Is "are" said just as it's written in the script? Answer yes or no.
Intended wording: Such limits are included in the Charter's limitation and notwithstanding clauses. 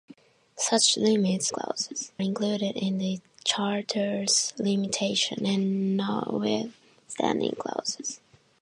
no